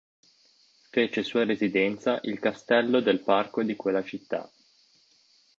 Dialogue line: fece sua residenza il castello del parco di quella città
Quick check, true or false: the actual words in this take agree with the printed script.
true